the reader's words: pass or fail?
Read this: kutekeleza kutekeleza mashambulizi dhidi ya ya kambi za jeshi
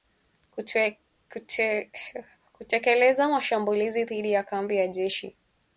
fail